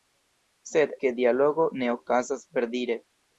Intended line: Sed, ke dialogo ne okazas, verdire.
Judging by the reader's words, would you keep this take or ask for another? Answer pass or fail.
pass